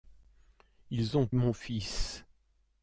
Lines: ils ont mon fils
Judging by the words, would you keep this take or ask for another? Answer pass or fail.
pass